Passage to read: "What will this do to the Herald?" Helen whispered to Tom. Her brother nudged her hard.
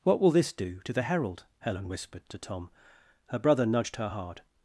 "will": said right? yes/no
yes